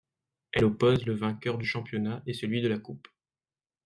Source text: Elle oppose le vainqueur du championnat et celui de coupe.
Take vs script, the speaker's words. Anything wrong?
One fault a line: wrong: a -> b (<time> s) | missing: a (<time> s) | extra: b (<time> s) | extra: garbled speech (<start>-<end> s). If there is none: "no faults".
extra: la (2.7 s)